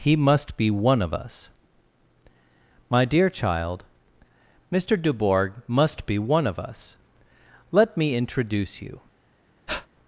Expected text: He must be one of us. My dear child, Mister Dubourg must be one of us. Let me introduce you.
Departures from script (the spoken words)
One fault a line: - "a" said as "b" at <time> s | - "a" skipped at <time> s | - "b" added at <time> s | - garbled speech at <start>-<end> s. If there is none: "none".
none